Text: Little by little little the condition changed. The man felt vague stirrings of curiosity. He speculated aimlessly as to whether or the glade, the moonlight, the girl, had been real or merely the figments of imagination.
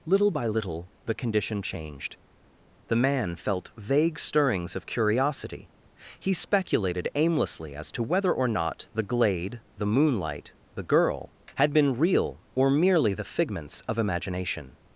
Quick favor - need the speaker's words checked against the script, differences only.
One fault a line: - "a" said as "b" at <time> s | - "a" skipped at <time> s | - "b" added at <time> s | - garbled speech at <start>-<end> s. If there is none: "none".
- "little" skipped at 0.9 s
- "not" added at 8.5 s